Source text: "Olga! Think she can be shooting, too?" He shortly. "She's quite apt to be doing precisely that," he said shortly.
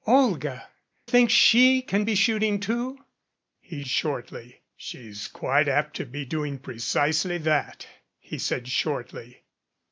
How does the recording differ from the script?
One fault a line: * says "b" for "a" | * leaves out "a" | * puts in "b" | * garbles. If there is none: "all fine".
all fine